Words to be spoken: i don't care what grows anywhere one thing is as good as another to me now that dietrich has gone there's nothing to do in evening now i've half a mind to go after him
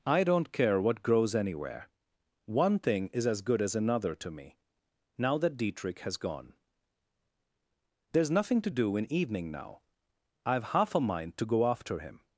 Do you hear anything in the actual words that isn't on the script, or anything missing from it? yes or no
no